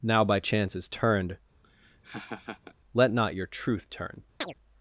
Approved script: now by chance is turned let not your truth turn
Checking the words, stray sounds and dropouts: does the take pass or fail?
fail